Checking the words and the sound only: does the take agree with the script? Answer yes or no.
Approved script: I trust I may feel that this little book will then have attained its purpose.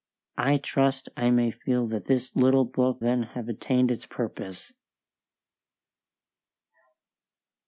no